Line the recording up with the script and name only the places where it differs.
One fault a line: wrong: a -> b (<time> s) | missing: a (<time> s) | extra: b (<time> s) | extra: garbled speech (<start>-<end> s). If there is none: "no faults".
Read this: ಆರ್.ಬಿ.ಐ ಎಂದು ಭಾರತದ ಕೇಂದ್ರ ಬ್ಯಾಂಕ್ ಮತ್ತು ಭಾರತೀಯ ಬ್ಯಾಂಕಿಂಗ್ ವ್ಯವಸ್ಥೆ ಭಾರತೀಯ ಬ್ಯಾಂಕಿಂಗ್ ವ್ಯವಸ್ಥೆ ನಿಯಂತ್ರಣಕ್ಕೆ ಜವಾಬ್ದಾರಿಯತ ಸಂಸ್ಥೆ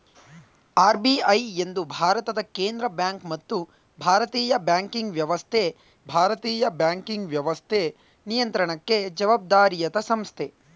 no faults